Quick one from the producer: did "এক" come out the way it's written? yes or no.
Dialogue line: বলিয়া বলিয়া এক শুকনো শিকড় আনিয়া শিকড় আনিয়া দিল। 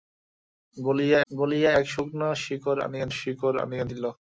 yes